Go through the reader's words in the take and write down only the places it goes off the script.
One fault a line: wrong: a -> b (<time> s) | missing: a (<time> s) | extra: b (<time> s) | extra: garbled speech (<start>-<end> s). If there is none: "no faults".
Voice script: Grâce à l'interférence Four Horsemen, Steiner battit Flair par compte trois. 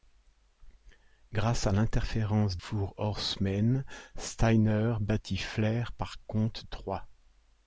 no faults